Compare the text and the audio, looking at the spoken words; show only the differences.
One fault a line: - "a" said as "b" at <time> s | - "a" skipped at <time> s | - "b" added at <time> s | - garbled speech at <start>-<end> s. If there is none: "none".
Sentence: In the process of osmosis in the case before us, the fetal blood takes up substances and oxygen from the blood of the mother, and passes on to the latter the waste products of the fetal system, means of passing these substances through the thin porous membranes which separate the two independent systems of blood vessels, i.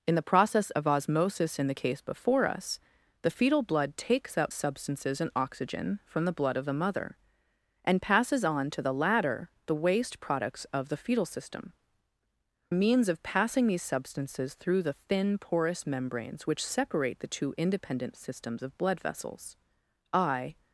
none